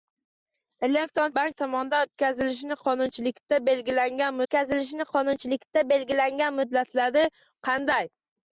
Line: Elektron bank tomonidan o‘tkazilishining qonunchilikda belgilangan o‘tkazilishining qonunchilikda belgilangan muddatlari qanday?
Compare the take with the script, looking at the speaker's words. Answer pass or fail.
pass